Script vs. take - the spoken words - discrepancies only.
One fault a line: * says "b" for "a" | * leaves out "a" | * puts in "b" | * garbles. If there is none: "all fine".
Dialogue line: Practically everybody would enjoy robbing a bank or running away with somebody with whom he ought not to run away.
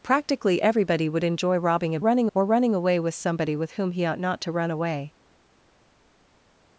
* says "running" for "bank"